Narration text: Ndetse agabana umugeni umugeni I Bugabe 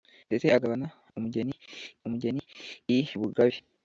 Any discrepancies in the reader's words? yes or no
no